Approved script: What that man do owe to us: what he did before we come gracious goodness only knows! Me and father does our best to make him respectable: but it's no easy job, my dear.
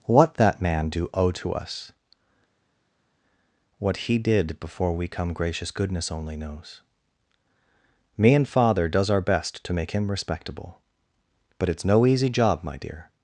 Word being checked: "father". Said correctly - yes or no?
yes